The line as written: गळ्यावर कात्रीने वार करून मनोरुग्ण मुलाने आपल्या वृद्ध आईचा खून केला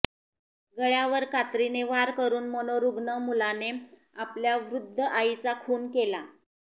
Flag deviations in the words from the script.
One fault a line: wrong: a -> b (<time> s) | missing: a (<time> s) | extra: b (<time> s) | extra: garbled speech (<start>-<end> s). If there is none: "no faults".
no faults